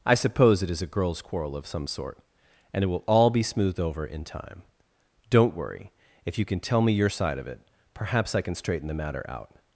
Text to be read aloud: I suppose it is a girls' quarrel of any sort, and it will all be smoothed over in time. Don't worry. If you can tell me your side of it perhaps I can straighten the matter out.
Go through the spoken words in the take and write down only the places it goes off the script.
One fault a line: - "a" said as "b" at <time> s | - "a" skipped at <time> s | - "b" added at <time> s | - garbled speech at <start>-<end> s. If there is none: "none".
- "any" said as "some" at 1.7 s